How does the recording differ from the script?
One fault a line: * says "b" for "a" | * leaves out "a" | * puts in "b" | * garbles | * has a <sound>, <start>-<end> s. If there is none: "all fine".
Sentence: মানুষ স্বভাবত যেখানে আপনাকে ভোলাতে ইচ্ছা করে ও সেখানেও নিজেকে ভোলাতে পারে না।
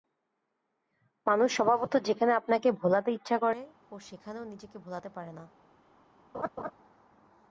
* has a laugh, 6.3-6.7 s